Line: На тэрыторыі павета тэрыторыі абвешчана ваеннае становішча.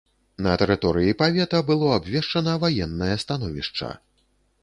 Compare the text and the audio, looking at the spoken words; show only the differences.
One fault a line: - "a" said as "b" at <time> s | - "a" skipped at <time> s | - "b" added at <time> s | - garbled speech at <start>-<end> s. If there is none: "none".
- "тэрыторыі" said as "было" at 1.7 s